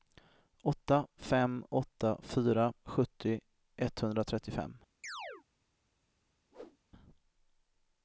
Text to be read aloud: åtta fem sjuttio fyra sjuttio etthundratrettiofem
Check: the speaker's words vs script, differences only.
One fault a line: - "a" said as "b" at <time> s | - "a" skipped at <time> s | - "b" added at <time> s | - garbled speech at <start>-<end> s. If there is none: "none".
- "sjuttio" said as "åtta" at 1.7 s